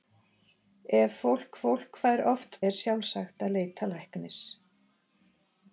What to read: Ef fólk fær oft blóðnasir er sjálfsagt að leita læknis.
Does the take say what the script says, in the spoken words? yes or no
no